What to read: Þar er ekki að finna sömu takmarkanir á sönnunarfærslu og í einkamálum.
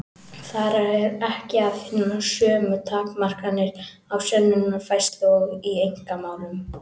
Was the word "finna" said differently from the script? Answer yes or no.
no